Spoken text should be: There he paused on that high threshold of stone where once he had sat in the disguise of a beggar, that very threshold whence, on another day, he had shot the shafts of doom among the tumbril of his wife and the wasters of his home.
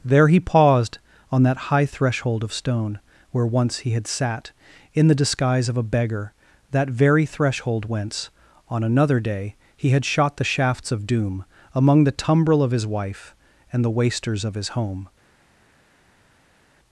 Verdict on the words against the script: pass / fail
pass